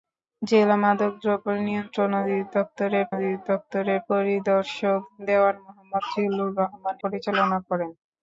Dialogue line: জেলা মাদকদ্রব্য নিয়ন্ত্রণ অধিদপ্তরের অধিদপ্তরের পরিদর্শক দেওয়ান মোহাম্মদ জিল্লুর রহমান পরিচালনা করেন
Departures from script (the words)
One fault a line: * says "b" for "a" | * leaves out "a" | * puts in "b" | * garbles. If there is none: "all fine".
all fine